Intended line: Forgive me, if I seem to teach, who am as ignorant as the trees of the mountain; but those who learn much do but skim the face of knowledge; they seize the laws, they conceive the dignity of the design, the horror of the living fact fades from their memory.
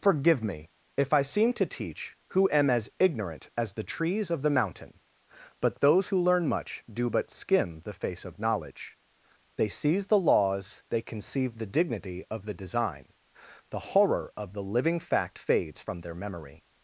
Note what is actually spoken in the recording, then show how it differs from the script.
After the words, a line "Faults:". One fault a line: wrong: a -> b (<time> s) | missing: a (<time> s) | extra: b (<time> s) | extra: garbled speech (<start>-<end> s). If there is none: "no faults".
Forgive me, if I seem to teach, who am as ignorant as the trees of the mountain; but those who learn much do but skim the face of knowledge; they seize the laws, they conceive the dignity of the design, the horror of the living fact fades from their memory.
Faults:
no faults